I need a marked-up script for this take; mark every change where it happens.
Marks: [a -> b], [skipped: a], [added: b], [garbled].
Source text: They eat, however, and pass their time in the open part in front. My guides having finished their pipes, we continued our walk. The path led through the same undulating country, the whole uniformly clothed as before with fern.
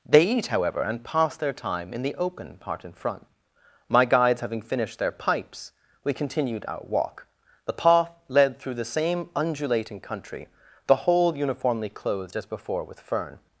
They eat, however, and pass their time in the open part in front. My guides having finished their pipes, we continued our walk. The path led through the same undulating country, the whole uniformly clothed as before with fern.